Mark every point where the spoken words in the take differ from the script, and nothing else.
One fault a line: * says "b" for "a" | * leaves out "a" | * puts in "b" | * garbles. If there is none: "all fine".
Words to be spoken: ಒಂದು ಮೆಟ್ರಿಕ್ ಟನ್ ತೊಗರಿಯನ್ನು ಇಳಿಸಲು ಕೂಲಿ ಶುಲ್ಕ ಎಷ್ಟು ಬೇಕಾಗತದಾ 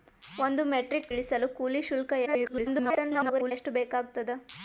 * leaves out "ಟನ್ ತೊಗರಿಯನ್ನು"
* garbles